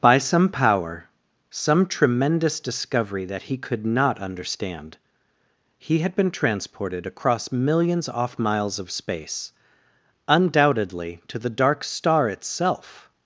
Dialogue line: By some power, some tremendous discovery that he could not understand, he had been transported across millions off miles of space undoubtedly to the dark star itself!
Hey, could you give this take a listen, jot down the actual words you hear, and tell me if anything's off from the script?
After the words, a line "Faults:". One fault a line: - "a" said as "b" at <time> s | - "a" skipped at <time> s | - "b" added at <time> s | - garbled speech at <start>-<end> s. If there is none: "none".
By some power, some tremendous discovery that he could not understand, he had been transported across millions off miles of space undoubtedly to the dark star itself!
Faults:
none